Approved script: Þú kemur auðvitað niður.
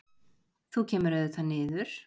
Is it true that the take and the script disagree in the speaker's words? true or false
false